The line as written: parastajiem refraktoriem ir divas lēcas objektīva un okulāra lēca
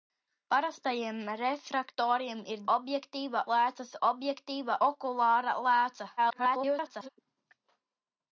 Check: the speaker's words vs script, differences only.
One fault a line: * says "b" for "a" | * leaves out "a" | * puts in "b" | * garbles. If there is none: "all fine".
* says "objektīva" for "divas"
* leaves out "un"
* garbles